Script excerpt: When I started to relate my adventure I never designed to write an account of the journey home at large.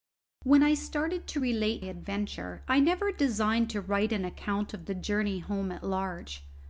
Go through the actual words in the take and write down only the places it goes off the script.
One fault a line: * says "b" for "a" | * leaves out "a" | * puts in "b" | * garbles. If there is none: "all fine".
* leaves out "my"